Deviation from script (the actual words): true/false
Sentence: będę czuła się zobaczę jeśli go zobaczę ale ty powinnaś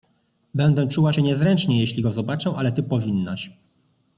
true